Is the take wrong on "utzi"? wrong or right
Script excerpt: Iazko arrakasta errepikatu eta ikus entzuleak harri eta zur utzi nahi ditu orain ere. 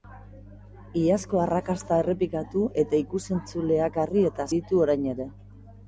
wrong